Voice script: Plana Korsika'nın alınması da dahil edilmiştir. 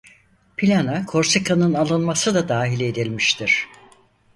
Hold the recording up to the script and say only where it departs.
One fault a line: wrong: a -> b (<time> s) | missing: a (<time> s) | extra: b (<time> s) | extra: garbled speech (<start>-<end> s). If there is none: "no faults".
no faults